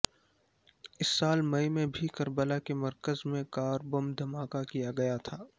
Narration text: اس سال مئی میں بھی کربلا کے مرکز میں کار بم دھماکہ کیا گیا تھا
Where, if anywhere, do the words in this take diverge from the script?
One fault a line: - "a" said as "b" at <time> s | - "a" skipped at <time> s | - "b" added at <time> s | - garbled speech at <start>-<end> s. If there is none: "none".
none